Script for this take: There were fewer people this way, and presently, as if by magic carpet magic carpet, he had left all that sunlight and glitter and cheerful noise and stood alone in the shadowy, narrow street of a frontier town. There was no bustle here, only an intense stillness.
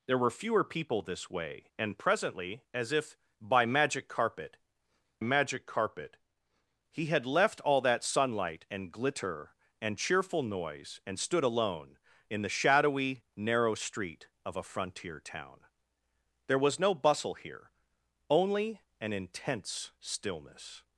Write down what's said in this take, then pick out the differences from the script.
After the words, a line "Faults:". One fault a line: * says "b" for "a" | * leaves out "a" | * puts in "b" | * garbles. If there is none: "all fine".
There were fewer people this way, and presently, as if by magic carpet magic carpet, he had left all that sunlight and glitter and cheerful noise and stood alone in the shadowy, narrow street of a frontier town. There was no bustle here, only an intense stillness.
Faults:
all fine